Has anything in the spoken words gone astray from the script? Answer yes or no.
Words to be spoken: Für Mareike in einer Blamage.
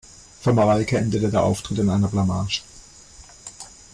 yes